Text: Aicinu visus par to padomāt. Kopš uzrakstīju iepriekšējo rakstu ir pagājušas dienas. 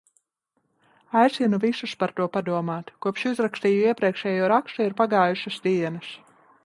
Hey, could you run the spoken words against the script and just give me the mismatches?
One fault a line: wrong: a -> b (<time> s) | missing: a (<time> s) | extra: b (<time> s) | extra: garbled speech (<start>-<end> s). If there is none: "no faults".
no faults